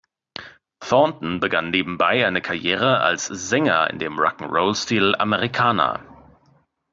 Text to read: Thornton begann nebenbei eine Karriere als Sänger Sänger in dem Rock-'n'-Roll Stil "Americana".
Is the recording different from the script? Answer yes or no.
yes